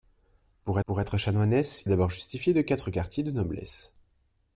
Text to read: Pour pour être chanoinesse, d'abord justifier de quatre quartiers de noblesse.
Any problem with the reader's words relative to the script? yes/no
no